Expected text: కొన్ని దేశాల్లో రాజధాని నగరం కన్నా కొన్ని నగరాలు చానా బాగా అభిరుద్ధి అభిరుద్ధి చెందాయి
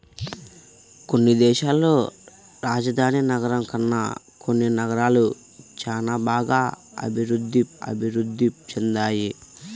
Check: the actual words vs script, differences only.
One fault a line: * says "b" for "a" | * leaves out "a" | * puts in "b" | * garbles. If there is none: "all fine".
all fine